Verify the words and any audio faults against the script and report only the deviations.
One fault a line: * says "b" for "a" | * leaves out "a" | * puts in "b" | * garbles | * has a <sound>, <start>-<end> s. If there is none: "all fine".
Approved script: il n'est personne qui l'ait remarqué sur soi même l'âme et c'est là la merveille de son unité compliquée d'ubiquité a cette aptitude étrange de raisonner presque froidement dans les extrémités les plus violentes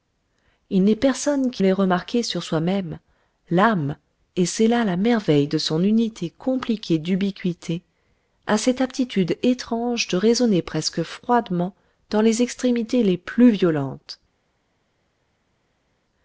all fine